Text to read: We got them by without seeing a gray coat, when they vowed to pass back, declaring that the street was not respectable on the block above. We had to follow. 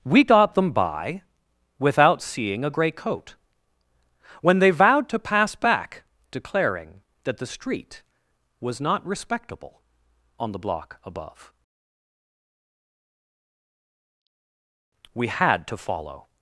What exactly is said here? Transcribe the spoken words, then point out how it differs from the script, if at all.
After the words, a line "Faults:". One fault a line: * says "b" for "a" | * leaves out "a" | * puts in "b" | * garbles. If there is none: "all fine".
We got them by without seeing a gray coat, when they vowed to pass back, declaring that the street was not respectable on the block above. We had to follow.
Faults:
all fine